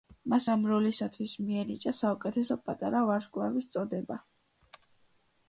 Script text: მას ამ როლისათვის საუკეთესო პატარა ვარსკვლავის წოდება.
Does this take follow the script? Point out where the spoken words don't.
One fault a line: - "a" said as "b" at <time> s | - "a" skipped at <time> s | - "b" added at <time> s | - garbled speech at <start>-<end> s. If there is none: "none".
- "მიენიჭა" added at 1.5 s